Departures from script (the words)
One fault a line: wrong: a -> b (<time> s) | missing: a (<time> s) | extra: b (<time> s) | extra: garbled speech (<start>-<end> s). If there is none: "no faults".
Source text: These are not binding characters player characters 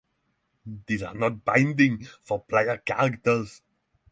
wrong: characters -> for (2.2 s)